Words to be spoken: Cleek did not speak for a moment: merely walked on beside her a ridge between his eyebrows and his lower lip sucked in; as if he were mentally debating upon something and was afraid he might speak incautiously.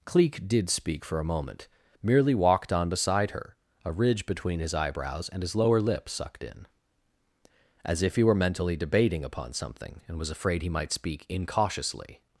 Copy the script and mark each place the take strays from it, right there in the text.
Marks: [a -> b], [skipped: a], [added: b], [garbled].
Cleek did [skipped: not] speak for a moment: merely walked on beside her a ridge between his eyebrows and his lower lip sucked in; as if he were mentally debating upon something and was afraid he might speak incautiously.